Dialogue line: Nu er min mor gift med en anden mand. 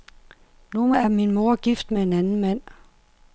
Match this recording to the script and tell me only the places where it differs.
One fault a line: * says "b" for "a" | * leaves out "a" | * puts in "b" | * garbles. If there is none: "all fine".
all fine